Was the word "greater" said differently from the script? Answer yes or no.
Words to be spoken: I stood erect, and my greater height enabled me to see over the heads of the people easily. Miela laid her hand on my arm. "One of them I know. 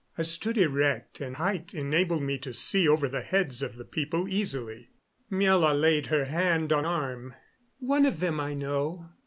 yes